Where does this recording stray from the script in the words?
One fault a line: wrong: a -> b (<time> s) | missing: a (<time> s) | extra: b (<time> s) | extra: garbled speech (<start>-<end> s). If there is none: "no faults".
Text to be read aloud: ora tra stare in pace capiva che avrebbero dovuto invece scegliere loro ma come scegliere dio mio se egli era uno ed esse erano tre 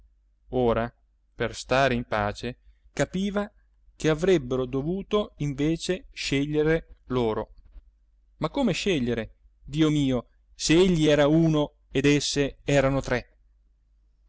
wrong: tra -> per (1.4 s)